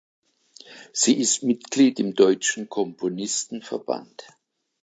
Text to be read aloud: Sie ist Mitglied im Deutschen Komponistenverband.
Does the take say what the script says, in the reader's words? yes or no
yes